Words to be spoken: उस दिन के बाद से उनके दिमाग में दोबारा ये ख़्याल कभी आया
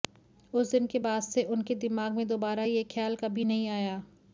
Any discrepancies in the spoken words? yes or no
yes